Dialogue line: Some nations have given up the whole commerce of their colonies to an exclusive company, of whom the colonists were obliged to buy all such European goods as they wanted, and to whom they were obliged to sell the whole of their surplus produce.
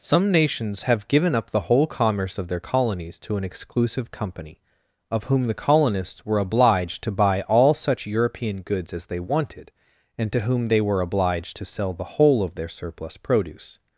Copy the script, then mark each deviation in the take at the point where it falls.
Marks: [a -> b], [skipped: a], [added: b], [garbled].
Some nations have given up the whole commerce of their colonies to an exclusive company, of whom the colonists were obliged to buy all such European goods as they wanted, and to whom they were obliged to sell the whole of their surplus produce.